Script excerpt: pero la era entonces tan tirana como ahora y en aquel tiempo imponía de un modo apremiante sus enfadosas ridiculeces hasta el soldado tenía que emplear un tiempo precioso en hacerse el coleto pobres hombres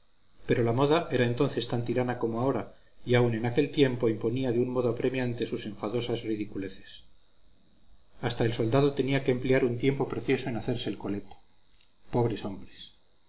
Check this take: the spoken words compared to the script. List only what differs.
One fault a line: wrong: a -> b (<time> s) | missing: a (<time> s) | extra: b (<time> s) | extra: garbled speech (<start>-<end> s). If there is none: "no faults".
extra: moda (0.8 s)
extra: aun (3.1 s)